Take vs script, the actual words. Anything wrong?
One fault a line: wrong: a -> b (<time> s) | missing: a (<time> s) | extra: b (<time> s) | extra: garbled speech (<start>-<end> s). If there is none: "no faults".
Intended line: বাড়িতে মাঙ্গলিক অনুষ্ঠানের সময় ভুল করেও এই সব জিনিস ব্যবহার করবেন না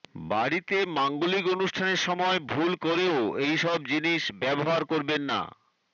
no faults